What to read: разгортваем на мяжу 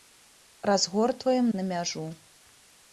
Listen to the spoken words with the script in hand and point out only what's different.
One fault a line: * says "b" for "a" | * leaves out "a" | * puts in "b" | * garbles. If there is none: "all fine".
all fine